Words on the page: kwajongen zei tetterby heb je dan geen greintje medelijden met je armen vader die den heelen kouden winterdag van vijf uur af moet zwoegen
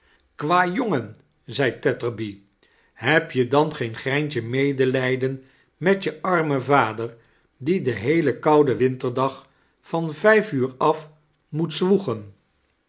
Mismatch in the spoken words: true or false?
false